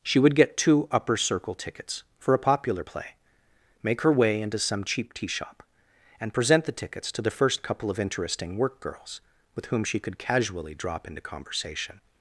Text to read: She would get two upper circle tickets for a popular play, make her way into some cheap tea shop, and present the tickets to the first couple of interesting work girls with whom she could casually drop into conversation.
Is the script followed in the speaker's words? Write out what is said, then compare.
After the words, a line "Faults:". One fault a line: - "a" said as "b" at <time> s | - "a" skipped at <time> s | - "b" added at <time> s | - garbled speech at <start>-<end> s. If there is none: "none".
She would get two upper circle tickets for a popular play, make her way into some cheap tea shop, and present the tickets to the first couple of interesting work girls with whom she could casually drop into conversation.
Faults:
none